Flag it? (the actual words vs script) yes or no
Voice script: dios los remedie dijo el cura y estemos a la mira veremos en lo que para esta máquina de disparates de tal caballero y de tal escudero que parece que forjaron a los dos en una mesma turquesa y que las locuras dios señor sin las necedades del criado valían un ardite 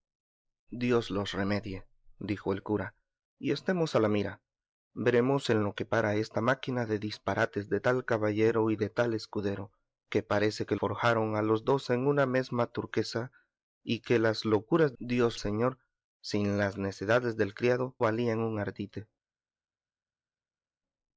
no